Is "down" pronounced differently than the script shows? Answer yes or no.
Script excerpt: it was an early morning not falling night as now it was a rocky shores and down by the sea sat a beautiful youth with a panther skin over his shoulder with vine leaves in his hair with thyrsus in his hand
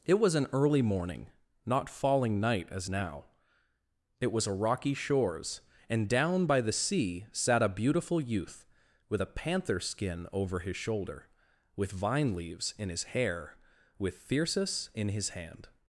no